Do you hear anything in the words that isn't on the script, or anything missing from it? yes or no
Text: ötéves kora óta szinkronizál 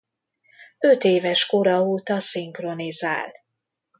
no